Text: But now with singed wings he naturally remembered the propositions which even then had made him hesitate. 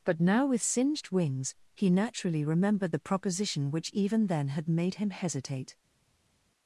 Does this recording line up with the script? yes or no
no